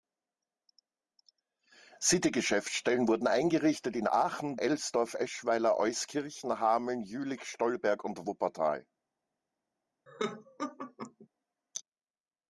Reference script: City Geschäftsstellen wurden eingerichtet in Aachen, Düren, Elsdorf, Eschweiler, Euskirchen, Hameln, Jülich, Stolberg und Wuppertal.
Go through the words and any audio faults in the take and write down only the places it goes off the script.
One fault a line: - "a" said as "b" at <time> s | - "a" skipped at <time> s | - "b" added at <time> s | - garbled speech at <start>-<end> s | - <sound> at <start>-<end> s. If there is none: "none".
- "Düren" skipped at 4.6 s
- laugh at 10.1-11.3 s